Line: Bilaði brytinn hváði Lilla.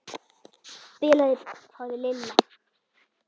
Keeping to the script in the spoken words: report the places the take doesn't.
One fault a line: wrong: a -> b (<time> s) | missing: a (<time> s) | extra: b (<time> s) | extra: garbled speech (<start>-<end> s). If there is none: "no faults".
missing: brytinn (1.4 s)